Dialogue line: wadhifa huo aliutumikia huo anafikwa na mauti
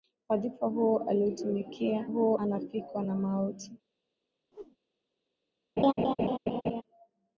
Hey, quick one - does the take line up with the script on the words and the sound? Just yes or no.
no